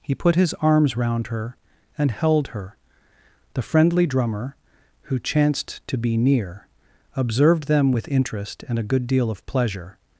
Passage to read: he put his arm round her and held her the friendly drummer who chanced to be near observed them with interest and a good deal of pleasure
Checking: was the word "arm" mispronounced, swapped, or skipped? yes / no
yes